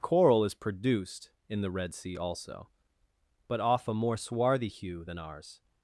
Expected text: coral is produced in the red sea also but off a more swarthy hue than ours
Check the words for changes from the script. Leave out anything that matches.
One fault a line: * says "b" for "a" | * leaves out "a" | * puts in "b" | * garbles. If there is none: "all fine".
all fine